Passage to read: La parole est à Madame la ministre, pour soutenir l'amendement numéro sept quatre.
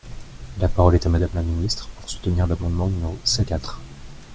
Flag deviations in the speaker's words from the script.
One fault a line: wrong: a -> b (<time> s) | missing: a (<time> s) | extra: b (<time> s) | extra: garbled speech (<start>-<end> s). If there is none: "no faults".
no faults